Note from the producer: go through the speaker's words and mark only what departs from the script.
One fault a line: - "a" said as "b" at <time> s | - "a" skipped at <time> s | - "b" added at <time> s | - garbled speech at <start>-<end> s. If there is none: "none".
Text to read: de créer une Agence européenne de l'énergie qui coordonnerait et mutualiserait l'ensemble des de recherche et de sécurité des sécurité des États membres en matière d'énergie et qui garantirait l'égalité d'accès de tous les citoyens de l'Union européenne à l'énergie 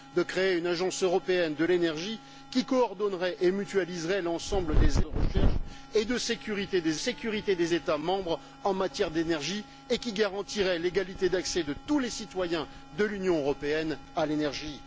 none